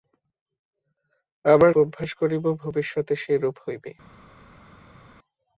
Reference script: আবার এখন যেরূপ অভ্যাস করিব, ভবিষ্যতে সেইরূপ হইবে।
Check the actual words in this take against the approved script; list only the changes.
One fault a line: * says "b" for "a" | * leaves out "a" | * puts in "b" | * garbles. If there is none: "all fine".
* leaves out "এখন যেরূপ"